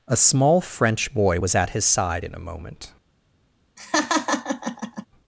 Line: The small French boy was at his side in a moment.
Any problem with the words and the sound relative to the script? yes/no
yes